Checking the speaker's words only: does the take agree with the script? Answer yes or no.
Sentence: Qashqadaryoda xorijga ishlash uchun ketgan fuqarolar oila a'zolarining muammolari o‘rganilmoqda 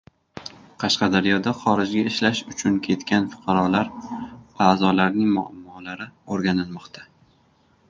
no